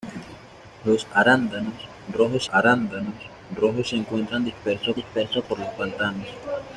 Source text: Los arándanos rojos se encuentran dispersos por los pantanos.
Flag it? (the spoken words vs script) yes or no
yes